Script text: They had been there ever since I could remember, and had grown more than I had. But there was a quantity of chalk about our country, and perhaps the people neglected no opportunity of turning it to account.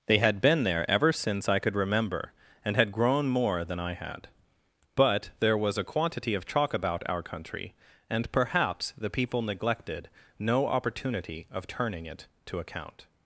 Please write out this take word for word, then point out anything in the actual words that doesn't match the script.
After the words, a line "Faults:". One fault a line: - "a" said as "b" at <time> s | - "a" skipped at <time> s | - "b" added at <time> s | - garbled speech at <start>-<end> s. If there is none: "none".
They had been there ever since I could remember, and had grown more than I had. But there was a quantity of chalk about our country, and perhaps the people neglected no opportunity of turning it to account.
Faults:
none